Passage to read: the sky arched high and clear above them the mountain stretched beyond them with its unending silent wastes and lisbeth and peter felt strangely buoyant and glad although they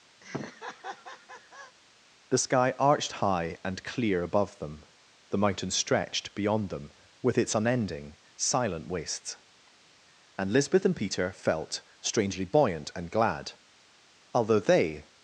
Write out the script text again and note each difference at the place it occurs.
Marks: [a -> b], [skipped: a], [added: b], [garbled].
the sky arched high and clear above them the mountain stretched beyond them with its unending silent wastes and lisbeth and peter felt strangely buoyant and glad although they